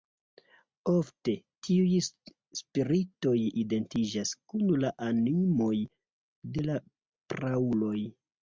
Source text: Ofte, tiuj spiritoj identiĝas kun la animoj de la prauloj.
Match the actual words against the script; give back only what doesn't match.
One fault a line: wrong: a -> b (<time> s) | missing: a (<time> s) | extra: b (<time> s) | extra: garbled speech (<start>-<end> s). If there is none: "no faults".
no faults